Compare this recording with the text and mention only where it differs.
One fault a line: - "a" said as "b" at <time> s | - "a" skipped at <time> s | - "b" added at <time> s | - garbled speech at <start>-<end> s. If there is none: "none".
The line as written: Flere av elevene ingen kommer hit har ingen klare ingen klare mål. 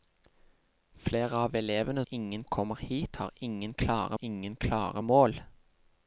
none